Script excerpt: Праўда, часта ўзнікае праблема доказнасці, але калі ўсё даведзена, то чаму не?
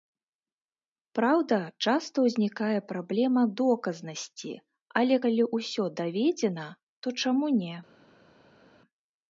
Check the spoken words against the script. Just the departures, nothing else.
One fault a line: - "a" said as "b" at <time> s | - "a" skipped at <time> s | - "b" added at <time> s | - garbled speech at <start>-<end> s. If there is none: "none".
none